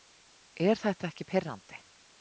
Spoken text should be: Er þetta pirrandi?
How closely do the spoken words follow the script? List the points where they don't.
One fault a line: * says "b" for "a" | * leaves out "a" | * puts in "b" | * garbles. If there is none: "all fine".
* puts in "ekki"